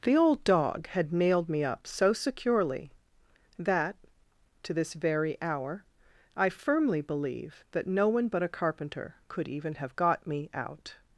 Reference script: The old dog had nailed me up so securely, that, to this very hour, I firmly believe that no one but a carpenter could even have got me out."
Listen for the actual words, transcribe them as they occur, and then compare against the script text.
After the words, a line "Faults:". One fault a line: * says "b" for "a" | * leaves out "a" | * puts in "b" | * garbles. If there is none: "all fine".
The old dog had nailed me up so securely, that, to this very hour, I firmly believe that no one but a carpenter could even have got me out."
Faults:
all fine